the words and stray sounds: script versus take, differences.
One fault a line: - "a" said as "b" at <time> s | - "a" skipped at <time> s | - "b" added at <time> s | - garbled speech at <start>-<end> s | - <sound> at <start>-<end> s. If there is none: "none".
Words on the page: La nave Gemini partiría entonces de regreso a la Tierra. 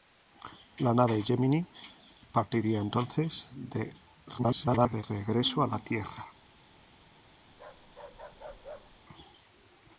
- garbled speech at 4.4-5.0 s
- bark at 7.5-9.0 s